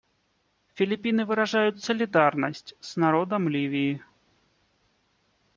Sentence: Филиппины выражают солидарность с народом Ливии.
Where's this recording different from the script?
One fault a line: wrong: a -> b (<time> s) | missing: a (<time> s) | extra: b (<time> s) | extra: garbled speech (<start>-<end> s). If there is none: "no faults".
no faults